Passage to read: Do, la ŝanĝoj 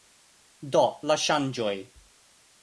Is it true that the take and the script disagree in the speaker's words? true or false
false